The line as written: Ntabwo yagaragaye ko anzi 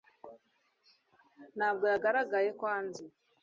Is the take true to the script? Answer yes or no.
yes